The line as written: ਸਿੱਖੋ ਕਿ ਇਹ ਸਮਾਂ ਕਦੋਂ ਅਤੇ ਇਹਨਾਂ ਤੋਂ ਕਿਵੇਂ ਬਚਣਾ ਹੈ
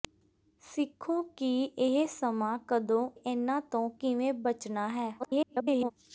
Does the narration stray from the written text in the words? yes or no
yes